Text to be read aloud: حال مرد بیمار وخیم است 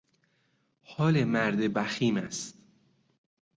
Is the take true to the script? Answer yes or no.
no